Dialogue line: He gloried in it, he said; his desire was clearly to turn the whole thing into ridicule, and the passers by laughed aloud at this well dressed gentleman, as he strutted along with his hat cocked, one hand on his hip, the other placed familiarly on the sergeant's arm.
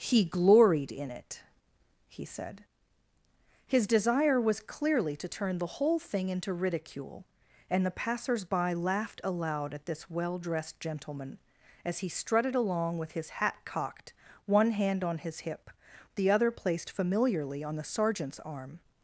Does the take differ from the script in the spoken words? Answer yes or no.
no